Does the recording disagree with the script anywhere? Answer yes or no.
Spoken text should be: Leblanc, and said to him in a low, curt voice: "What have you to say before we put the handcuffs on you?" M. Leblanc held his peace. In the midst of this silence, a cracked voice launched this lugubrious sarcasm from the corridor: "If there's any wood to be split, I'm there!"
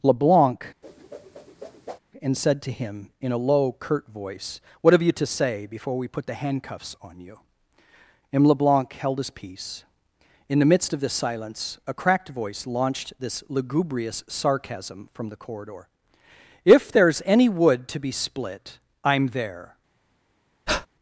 no